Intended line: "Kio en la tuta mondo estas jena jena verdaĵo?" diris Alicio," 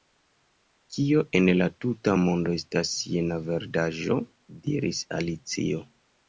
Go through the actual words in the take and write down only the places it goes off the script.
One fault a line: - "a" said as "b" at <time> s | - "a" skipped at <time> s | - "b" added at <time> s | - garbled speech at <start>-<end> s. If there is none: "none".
- "jena" skipped at 3.4 s